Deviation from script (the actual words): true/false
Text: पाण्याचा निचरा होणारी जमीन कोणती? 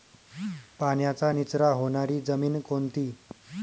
false